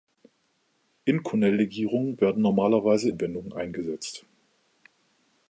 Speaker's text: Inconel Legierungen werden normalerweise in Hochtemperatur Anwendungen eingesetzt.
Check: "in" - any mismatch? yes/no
yes